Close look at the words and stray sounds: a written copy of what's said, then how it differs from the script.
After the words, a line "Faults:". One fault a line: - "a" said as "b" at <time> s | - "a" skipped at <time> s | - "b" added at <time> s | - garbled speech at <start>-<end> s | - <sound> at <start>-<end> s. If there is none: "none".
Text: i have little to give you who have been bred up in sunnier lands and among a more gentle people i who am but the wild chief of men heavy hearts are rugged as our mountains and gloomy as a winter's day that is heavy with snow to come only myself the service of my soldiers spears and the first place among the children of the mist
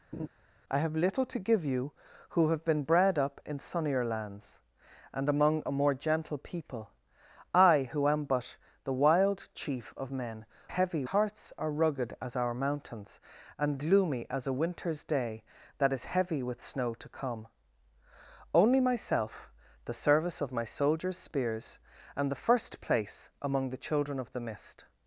i have little to give you who have been bred up in sunnier lands and among a more gentle people i who am but the wild chief of men heavy hearts are rugged as our mountains and gloomy as a winter's day that is heavy with snow to come only myself the service of my soldiers spears and the first place among the children of the mist
Faults:
- laugh at 0.1-0.3 s